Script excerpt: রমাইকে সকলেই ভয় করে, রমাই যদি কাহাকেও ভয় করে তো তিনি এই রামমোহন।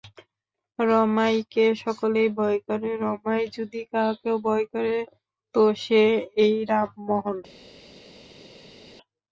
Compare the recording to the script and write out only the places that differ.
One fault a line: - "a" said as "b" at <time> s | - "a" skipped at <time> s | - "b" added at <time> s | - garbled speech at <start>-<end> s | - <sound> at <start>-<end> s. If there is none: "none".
- "তিনি" said as "সে" at 5.8 s